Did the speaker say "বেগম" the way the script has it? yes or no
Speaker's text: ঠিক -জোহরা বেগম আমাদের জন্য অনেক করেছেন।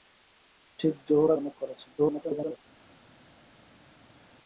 no